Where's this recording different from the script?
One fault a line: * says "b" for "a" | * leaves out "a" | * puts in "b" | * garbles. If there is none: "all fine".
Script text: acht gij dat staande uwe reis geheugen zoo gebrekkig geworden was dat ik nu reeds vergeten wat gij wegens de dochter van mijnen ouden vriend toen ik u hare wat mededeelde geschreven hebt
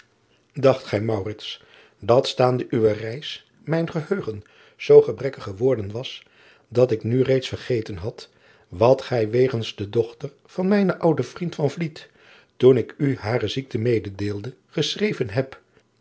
* puts in "mijn"
* puts in "had"
* says "ziekte" for "wat"